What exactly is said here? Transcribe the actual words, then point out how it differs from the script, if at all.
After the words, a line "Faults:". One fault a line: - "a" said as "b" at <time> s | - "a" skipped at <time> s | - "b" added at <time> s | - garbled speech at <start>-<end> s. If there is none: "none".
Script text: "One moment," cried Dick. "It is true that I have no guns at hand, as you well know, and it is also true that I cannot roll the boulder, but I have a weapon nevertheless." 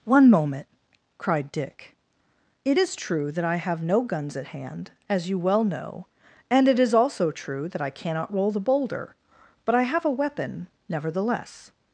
"One moment," cried Dick. "It is true that I have no guns at hand, as you well know, and it is also true that I cannot roll the boulder, but I have a weapon nevertheless."
Faults:
none